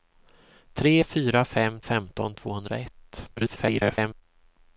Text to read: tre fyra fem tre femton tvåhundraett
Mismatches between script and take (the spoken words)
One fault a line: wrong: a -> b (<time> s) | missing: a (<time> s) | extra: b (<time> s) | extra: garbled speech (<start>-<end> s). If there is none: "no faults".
missing: tre (1.8 s)
extra: garbled speech (3.4-4.2 s)